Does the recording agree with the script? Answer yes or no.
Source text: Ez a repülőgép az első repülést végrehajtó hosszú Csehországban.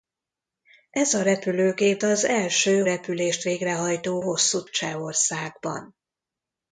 yes